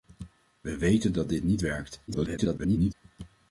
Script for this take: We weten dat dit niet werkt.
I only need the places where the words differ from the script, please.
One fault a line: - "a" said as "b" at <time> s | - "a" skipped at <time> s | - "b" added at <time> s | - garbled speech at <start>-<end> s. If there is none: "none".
- garbled speech at 2.1-2.9 s